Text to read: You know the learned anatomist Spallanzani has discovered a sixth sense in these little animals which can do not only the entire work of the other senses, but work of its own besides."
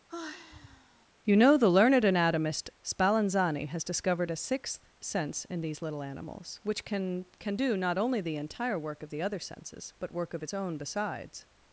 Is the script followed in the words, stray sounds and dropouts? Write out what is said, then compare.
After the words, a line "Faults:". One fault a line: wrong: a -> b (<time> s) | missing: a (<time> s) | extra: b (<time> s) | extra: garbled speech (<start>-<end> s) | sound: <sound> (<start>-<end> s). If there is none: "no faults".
You know the learned anatomist Spallanzani has discovered a sixth sense in these little animals which can can do not only the entire work of the other senses, but work of its own besides."
Faults:
sound: sigh (0.1-1.1 s)
extra: can (7.4 s)